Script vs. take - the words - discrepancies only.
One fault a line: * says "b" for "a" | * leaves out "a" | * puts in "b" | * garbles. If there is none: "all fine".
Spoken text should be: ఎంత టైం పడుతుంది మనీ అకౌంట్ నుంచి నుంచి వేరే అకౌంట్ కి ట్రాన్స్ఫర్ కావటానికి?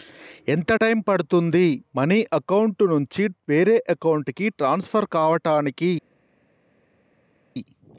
* leaves out "నుంచి"